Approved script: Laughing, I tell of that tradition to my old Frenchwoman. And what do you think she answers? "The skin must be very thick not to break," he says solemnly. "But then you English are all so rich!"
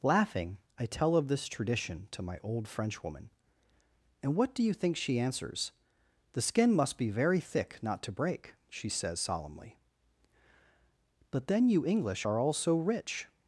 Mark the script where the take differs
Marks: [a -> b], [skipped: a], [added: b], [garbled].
Laughing, I tell of [that -> this] tradition to my old Frenchwoman. And what do you think she answers? "The skin must be very thick not to break," [he -> she] says solemnly. "But then you English are all so rich!"